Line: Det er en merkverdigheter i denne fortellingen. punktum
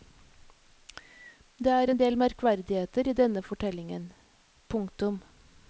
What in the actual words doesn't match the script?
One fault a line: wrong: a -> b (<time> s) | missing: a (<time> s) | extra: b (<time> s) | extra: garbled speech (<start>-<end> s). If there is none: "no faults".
extra: del (2.0 s)